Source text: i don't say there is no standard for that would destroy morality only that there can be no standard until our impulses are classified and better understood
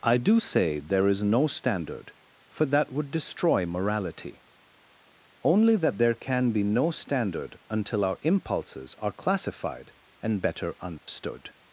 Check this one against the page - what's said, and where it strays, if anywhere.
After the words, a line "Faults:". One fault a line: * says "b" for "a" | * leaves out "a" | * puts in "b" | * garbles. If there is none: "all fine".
i do say there is no standard for that would destroy morality only that there can be no standard until our impulses are classified and better understood
Faults:
* says "do" for "don't"